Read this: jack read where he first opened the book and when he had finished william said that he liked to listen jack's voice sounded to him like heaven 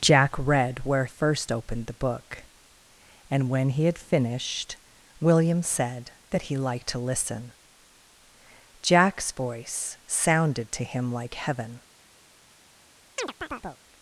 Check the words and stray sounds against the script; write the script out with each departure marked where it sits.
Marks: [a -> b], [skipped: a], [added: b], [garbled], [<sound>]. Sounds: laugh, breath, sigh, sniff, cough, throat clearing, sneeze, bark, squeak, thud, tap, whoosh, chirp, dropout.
jack read where [skipped: he] first opened the book and when he had finished william said that he liked to listen jack's voice sounded to him like heaven [chirp]